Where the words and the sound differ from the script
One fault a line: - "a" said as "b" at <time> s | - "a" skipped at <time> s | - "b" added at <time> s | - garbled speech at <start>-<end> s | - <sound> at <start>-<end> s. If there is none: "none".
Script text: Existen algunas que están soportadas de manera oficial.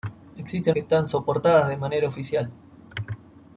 - "algunas" skipped at 0.8 s